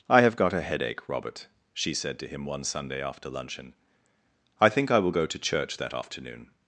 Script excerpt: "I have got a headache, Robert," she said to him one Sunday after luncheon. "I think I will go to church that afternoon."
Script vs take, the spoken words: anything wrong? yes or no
no